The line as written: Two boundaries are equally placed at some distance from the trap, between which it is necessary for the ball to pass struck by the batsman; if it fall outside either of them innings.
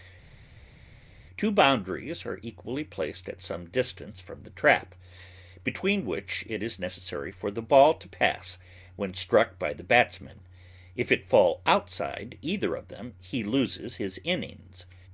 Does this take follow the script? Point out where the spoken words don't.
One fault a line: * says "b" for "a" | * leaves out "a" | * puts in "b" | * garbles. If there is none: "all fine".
* puts in "when"
* puts in "he loses his"